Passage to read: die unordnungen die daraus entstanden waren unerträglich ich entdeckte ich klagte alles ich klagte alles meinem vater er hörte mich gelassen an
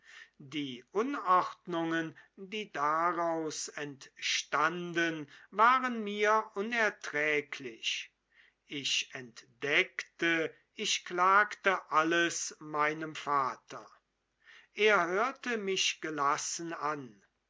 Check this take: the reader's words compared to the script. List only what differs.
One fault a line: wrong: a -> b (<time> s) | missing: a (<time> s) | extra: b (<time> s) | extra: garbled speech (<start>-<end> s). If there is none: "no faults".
extra: mir (6.0 s)
missing: ich klagte alles (12.6 s)